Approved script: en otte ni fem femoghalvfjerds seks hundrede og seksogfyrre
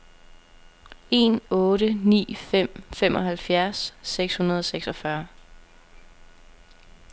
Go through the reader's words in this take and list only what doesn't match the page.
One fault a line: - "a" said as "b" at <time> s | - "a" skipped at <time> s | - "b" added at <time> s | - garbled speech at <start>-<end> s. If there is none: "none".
none